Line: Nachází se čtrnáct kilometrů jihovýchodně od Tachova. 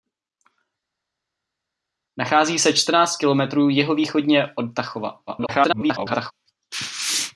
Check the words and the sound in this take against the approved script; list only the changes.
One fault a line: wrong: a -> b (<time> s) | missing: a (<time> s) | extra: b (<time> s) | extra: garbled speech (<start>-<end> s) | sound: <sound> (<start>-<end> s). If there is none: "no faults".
extra: garbled speech (5.3-6.3 s)